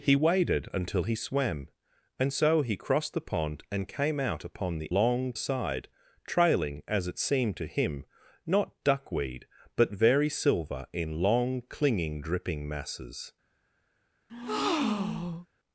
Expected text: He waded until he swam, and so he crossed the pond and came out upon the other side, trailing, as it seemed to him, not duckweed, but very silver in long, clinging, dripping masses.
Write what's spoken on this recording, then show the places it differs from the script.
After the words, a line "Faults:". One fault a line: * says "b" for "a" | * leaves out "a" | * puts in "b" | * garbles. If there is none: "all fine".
He waded until he swam, and so he crossed the pond and came out upon the long side, trailing, as it seemed to him, not duckweed, but very silver in long, clinging, dripping masses.
Faults:
* says "long" for "other"